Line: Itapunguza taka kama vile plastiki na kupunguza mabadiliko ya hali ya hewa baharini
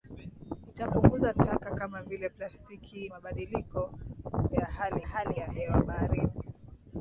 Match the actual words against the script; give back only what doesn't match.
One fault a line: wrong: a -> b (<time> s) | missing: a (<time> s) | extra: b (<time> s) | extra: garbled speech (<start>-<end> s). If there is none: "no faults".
missing: na kupunguza (3.1 s)
extra: hali (5.0 s)